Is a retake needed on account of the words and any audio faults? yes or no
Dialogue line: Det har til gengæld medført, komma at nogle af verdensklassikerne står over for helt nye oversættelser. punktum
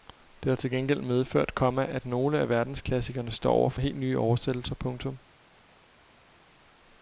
no